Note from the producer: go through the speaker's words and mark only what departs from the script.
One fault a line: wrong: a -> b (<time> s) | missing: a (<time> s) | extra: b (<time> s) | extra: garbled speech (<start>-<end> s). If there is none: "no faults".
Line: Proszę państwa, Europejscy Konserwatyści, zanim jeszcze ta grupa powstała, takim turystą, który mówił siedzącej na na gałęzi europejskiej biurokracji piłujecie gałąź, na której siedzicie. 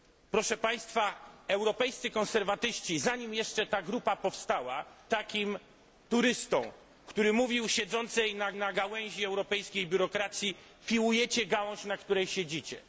no faults